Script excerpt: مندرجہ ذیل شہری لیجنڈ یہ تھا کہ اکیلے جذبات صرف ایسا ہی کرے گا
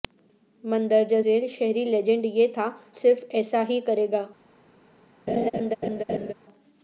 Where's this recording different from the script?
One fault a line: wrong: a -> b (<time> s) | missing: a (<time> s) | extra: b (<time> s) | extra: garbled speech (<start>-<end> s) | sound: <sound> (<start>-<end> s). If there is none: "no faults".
missing: کہ اکیلے جذبات (2.7 s)
sound: laugh (5.3-6.3 s)